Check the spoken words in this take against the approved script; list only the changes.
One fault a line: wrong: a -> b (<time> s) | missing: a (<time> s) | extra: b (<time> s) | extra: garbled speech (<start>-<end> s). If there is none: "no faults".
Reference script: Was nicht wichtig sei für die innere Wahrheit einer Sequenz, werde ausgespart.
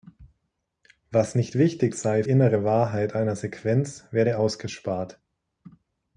missing: für die (2.2 s)